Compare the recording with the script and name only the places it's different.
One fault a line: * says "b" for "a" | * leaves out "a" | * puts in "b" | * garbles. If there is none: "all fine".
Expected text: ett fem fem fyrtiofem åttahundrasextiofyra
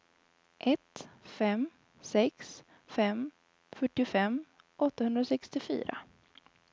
* puts in "sex"